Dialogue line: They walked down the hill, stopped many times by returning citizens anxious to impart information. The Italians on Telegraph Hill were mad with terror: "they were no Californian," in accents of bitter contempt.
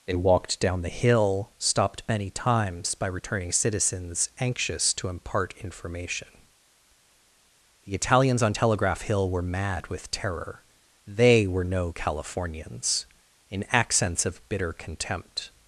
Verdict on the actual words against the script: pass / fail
fail